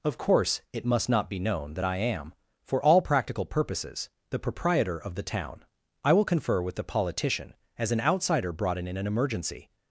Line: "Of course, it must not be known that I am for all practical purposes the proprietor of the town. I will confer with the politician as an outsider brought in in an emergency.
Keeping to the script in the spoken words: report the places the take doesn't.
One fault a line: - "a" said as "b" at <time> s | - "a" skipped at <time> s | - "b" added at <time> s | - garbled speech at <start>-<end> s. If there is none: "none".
none